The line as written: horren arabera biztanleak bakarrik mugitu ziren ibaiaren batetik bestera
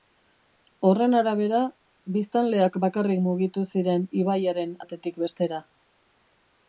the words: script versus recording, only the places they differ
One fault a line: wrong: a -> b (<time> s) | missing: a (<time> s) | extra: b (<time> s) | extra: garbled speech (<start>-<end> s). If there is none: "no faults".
no faults